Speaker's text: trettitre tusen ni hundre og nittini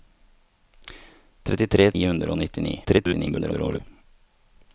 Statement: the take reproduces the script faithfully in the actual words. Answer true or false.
false